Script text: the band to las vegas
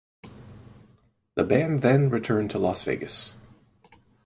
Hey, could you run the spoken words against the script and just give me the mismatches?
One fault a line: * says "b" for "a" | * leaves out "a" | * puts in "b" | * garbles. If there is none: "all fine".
* puts in "then returned"